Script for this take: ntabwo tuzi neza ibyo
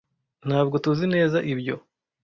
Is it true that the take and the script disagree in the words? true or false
false